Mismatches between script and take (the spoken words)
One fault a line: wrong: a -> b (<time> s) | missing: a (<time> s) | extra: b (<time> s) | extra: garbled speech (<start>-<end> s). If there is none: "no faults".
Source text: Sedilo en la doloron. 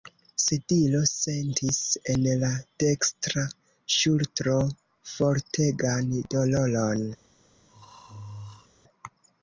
extra: sentis (1.1 s)
extra: dekstra ŝultro fortegan (2.9 s)